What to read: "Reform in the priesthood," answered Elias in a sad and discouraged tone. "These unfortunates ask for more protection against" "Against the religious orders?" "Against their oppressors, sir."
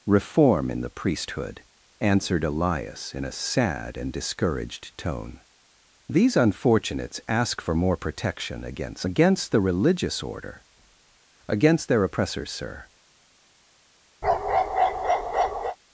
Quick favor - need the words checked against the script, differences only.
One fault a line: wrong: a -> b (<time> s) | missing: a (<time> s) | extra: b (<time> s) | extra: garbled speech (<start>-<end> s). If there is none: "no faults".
wrong: orders -> order (10.2 s)